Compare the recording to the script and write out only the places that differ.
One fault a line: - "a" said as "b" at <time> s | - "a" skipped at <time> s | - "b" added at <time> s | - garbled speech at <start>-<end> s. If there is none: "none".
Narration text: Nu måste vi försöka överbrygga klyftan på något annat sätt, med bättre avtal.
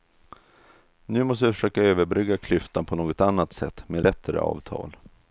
none